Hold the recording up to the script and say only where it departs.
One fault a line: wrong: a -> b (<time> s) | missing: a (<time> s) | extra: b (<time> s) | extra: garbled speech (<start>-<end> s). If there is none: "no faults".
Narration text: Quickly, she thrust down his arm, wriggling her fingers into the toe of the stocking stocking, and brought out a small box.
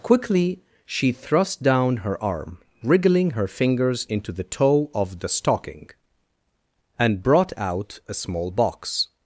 wrong: his -> her (2.0 s)
missing: stocking (5.9 s)